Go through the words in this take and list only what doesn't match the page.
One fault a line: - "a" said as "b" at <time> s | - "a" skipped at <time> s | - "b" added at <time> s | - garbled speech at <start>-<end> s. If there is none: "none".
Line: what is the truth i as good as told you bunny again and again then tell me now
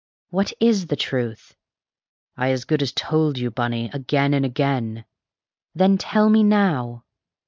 none